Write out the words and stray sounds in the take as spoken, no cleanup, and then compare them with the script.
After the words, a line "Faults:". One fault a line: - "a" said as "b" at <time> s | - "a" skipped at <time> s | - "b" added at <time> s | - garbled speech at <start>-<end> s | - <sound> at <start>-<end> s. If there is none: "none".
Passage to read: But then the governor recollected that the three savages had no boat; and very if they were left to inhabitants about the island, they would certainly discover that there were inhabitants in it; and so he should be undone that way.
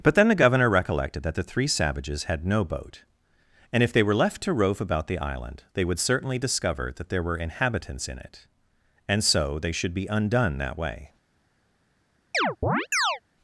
But then the governor recollected that the three savages had no boat; and if they were left to rove about the island, they would certainly discover that there were inhabitants in it; and so they should be undone that way.
Faults:
- "very" skipped at 3.8 s
- "inhabitants" said as "rove" at 4.5 s
- "he" said as "they" at 9.6 s
- chirp at 12.3-13.2 s